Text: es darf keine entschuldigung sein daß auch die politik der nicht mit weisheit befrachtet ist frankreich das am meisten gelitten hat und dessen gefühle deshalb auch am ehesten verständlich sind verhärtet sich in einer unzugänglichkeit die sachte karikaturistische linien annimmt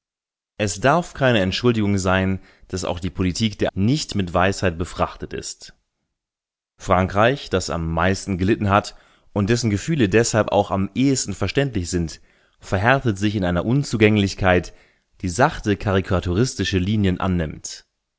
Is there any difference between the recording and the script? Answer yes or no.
no